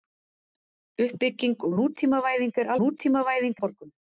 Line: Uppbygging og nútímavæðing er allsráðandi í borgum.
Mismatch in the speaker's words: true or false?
true